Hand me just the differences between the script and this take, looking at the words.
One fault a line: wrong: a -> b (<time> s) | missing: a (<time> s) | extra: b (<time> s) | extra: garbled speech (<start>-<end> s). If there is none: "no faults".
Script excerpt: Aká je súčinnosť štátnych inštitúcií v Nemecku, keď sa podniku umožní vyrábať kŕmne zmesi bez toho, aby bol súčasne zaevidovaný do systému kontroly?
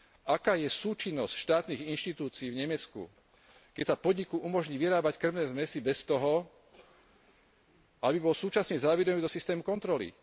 no faults